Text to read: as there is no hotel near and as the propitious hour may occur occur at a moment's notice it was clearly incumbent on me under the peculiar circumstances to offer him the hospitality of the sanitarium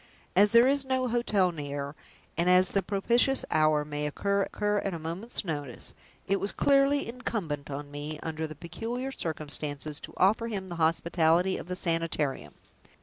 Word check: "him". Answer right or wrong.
right